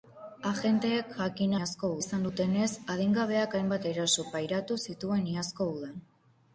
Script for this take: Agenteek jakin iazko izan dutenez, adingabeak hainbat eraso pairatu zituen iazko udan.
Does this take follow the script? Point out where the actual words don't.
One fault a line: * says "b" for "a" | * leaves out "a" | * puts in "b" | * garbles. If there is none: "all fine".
all fine